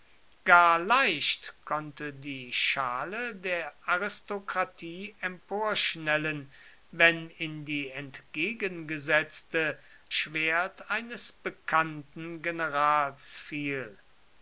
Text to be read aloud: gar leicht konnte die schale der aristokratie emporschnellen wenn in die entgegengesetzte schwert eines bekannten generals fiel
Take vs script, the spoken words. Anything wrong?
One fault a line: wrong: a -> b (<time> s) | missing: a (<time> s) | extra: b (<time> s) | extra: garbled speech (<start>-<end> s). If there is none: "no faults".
no faults